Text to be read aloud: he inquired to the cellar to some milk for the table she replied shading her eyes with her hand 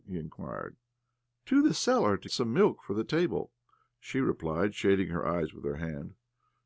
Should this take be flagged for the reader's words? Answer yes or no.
no